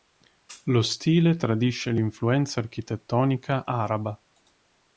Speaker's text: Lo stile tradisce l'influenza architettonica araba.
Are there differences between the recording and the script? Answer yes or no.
no